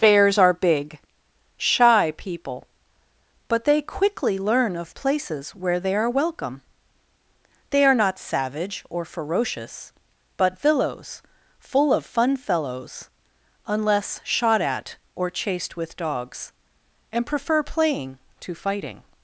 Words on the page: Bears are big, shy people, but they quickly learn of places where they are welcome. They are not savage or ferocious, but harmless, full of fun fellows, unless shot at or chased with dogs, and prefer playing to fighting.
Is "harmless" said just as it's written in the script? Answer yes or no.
no